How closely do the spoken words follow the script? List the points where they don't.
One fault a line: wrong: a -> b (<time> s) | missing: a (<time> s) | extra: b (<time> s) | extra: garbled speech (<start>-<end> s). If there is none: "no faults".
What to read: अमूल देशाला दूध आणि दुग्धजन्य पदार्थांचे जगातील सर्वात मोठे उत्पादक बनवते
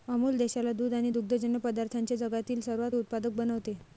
missing: मोठे (3.0 s)